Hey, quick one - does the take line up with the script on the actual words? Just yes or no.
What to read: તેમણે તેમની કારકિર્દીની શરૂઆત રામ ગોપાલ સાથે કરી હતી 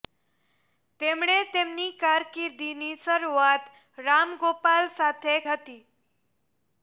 no